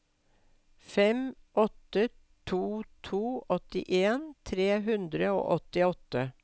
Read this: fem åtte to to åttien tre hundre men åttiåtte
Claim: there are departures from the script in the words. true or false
true